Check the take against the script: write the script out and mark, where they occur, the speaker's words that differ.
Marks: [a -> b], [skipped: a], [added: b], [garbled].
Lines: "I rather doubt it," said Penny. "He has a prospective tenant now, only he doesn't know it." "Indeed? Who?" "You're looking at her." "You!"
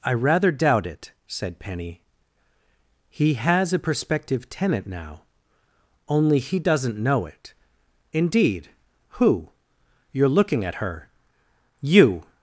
"I rather doubt it," said Penny. "He has a prospective tenant now, only he doesn't know it." "Indeed? Who?" "You're looking at her." "You!"